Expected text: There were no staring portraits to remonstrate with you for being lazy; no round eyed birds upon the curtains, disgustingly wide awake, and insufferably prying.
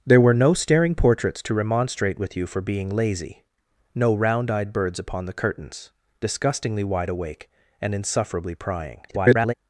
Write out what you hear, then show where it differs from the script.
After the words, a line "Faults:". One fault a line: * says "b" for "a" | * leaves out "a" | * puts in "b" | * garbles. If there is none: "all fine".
There were no staring portraits to remonstrate with you for being lazy; no round eyed birds upon the curtains, disgustingly wide awake, and insufferably prying. [garbled]
Faults:
* garbles